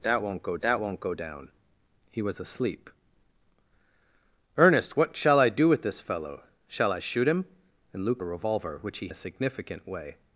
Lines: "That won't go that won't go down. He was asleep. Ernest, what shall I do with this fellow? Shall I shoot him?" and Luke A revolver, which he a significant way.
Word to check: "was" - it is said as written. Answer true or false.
true